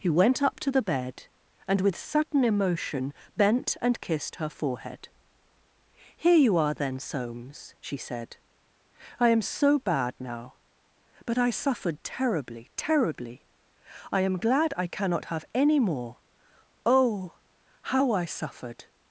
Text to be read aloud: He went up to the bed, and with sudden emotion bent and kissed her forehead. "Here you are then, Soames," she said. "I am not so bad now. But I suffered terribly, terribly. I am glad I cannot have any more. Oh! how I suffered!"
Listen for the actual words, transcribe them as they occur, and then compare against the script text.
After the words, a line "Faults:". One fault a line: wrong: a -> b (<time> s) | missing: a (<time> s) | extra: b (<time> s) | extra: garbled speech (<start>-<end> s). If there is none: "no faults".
He went up to the bed, and with sudden emotion bent and kissed her forehead. "Here you are then, Soames," she said. "I am so bad now. But I suffered terribly, terribly. I am glad I cannot have any more. Oh! how I suffered!"
Faults:
missing: not (9.4 s)